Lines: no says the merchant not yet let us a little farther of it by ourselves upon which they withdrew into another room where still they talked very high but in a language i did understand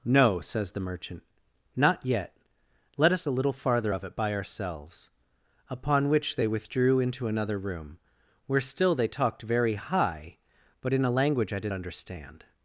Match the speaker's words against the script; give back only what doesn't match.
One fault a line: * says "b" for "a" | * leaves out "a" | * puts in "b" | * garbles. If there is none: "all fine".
all fine